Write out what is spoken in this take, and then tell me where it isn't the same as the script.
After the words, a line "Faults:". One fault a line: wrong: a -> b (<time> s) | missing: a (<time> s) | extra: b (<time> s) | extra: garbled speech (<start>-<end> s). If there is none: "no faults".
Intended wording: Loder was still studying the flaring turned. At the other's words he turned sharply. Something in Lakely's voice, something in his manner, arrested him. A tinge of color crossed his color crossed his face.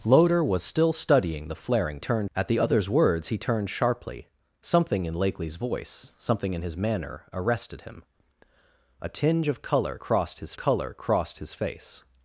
Loder was still studying the flaring turned. At the other's words he turned sharply. Something in Lakely's voice, something in his manner, arrested him. A tinge of color crossed his color crossed his face.
Faults:
no faults